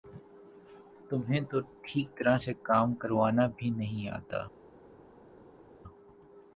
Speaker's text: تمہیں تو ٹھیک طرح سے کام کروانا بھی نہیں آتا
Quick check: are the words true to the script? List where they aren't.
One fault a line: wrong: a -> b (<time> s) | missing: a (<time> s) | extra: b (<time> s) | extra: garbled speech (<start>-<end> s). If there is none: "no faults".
no faults